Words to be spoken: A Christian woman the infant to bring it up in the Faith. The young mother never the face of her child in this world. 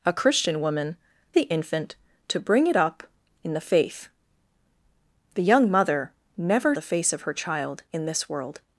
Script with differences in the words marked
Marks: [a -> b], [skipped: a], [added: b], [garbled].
A Christian woman the infant to bring it up in the Faith. The young mother never the face of her child in this world.